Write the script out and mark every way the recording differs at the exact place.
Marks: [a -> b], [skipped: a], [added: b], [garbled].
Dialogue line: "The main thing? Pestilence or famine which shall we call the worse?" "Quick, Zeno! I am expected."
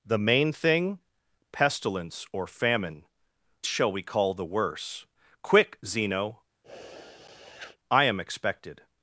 "The main thing? Pestilence or famine [skipped: which] shall we call the worse?" "Quick, Zeno! I am expected."